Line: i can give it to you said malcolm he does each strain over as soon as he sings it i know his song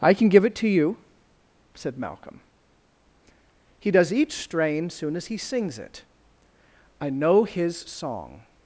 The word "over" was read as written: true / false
false